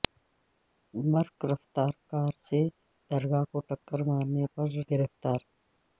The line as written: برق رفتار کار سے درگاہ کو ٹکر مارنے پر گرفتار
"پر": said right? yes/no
yes